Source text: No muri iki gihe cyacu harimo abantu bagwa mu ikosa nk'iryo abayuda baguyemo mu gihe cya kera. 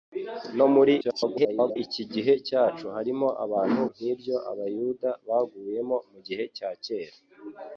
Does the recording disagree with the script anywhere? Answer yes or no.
yes